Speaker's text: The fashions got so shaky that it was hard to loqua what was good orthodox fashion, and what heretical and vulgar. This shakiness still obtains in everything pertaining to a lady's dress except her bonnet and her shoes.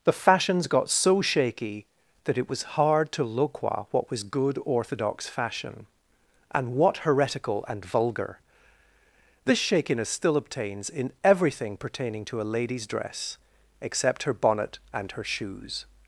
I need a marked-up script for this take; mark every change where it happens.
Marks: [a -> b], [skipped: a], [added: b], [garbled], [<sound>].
The fashions got so shaky that it was hard to loqua what was good orthodox fashion, and what heretical and vulgar. This shakiness still obtains in everything pertaining to a lady's dress except her bonnet and her shoes.